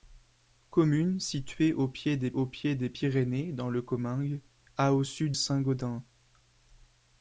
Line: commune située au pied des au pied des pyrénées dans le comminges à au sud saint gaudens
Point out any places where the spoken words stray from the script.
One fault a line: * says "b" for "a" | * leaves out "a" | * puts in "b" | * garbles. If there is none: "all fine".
all fine